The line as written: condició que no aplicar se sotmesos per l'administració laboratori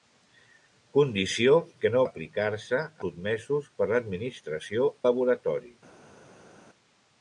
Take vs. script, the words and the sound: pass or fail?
pass